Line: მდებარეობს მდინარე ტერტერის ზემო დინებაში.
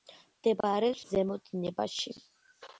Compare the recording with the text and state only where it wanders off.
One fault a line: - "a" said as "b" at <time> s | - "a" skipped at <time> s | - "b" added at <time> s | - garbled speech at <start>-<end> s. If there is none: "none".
- "მდინარე ტერტერის" skipped at 1.0 s